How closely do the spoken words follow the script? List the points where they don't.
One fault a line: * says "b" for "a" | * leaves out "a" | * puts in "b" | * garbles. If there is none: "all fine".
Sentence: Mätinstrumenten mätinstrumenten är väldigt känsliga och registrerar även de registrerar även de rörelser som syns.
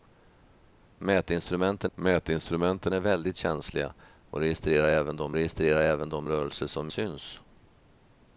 all fine